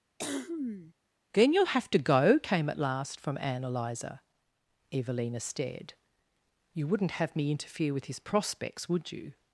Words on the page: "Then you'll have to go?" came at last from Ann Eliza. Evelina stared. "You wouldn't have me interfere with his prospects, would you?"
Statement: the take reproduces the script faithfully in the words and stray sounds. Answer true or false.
false